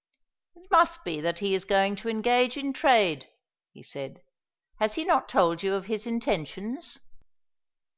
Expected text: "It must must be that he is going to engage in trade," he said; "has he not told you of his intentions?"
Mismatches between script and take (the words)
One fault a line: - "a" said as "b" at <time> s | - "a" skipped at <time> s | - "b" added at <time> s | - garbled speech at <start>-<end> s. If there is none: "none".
- "must" skipped at 1.0 s